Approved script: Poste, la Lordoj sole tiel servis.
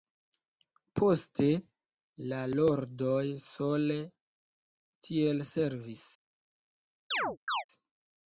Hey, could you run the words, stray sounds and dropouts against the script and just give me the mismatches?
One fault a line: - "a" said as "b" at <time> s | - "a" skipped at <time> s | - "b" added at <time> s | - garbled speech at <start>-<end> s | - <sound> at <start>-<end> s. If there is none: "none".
- chirp at 7.1-7.6 s